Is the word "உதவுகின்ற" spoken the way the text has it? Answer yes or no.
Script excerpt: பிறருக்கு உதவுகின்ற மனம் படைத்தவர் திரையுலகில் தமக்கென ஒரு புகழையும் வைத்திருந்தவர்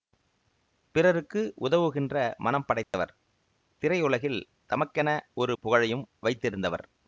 yes